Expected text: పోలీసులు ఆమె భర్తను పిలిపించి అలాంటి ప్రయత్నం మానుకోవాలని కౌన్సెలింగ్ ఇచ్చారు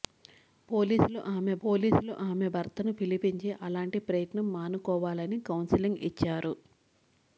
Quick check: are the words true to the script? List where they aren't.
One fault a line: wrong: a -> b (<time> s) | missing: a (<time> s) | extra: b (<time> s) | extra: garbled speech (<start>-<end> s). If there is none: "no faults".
extra: పోలీసులు ఆమె (1.6 s)